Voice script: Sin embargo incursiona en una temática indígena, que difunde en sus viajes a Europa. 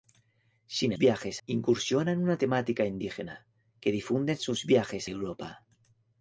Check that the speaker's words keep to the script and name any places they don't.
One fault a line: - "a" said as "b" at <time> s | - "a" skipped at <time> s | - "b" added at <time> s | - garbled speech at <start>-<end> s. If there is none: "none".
- "embargo" said as "viajes" at 1.0 s
- "a" skipped at 5.1 s